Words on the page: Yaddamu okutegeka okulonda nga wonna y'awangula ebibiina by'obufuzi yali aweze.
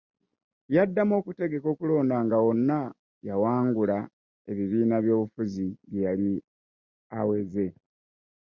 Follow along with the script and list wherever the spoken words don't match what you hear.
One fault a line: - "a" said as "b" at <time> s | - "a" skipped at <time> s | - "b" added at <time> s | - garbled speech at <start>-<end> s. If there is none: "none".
- "bye" added at 5.9 s